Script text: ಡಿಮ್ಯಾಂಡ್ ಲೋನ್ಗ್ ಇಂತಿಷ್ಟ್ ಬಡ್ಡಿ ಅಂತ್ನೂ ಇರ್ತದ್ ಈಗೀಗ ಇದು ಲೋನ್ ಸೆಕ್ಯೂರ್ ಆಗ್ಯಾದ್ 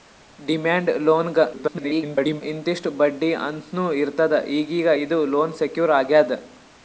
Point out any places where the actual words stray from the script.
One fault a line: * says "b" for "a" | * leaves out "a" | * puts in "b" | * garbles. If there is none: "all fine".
* garbles